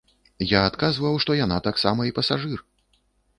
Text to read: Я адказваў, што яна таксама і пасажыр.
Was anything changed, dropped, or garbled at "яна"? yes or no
no